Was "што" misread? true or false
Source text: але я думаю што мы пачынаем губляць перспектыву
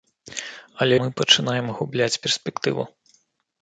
true